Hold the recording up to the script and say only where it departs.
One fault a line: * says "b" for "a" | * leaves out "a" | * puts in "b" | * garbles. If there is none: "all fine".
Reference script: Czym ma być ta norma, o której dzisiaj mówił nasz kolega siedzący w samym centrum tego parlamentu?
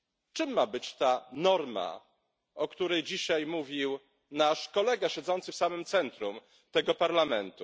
all fine